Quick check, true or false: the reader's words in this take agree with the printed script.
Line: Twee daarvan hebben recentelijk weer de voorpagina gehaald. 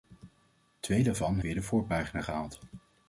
false